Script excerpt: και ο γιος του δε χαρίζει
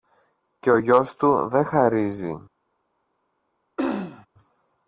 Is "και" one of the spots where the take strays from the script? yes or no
no